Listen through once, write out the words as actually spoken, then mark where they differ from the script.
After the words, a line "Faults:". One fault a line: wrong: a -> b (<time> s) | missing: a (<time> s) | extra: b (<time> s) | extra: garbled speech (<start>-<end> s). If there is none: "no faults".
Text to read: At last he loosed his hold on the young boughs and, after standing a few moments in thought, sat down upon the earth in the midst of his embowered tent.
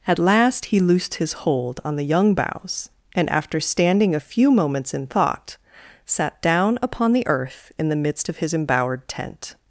At last he loosed his hold on the young boughs and, after standing a few moments in thought, sat down upon the earth in the midst of his embowered tent.
Faults:
no faults